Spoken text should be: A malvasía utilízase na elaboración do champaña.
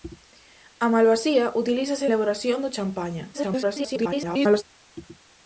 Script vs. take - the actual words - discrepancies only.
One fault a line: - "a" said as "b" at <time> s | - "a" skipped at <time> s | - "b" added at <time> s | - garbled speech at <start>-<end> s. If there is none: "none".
- "na" skipped at 2.0 s
- garbled speech at 3.3-4.6 s